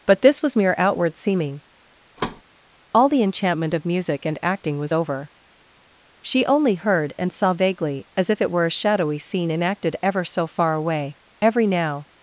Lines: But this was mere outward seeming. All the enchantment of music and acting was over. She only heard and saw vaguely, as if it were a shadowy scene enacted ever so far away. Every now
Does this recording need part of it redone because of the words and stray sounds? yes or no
yes